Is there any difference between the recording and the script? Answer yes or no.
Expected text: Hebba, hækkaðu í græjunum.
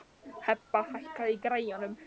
no